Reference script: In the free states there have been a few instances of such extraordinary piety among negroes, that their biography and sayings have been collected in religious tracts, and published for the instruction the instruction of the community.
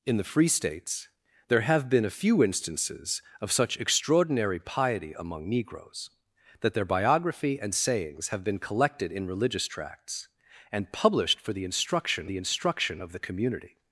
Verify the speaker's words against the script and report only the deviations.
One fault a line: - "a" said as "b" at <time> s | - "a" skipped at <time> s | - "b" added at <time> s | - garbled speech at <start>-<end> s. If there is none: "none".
none